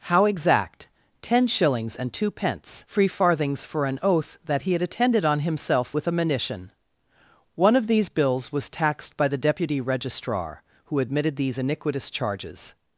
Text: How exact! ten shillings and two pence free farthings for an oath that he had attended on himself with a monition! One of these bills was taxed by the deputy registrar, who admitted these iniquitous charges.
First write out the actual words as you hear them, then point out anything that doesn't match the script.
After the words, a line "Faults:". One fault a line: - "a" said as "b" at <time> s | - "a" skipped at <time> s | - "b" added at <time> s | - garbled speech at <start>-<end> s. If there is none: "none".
How exact! ten shillings and two pence free farthings for an oath that he had attended on himself with a monition! One of these bills was taxed by the deputy registrar, who admitted these iniquitous charges.
Faults:
none